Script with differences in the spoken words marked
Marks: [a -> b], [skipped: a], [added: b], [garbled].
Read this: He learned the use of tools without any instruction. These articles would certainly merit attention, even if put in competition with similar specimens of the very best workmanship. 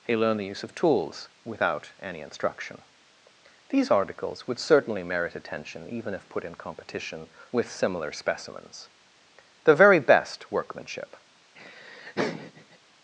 He learned the use of tools without any instruction. These articles would certainly merit attention, even if put in competition with similar specimens [skipped: of] the very best workmanship.